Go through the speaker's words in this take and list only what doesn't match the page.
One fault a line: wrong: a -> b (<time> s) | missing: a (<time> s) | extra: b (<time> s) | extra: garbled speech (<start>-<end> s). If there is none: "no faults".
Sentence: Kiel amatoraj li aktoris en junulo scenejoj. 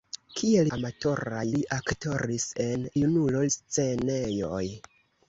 no faults